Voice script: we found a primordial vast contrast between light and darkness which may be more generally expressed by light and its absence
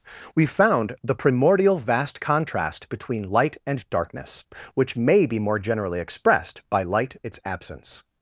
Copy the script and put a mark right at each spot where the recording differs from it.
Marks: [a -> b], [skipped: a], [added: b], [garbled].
we found [a -> the] primordial vast contrast between light and darkness which may be more generally expressed by light [skipped: and] its absence